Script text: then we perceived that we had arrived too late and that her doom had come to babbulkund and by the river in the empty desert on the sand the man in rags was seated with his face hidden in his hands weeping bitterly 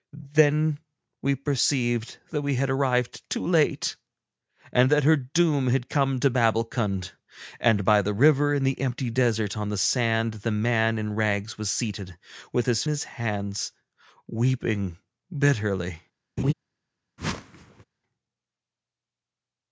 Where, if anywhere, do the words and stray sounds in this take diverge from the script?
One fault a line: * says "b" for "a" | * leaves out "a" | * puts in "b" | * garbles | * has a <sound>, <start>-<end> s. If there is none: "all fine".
* leaves out "face hidden in"
* has a laugh, 16.4-16.5 s
* has a whoosh, 17.2-17.8 s